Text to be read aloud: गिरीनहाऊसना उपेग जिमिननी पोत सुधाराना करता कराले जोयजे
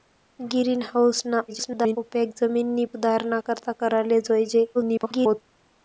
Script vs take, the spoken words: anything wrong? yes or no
yes